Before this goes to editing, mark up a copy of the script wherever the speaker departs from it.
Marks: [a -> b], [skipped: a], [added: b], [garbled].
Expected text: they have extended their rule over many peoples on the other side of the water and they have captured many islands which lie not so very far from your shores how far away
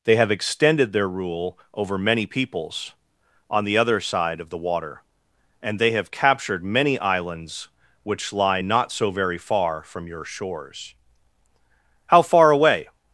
they have extended their rule over many peoples on the other side of the water and they have captured many islands which lie not so very far from your shores how far away